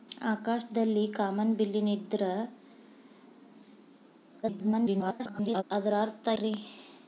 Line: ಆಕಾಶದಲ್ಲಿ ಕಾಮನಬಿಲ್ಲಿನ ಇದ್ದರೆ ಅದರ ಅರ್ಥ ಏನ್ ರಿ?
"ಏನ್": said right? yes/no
no